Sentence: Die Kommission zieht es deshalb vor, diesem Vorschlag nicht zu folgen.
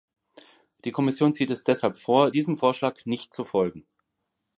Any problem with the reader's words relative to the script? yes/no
no